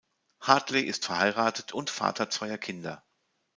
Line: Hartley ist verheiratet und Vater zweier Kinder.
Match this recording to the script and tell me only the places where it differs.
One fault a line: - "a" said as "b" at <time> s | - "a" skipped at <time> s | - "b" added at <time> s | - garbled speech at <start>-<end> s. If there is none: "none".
none